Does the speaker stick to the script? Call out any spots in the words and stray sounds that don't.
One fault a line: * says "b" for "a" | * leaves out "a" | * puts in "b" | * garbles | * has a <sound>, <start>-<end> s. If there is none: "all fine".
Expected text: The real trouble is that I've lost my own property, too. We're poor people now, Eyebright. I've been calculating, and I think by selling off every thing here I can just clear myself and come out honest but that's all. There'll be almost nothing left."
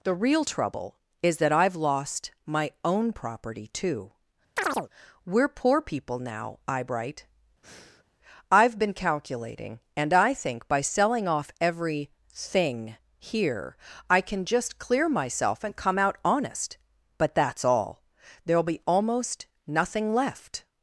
* has a chirp, 4.6-4.9 s
* has a breath, 7.6-8.0 s